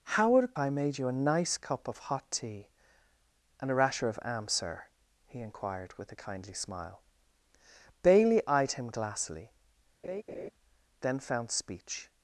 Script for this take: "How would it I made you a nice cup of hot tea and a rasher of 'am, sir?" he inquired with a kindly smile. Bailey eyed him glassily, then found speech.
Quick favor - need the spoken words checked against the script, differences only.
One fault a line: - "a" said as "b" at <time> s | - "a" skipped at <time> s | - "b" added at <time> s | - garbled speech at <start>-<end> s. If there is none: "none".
none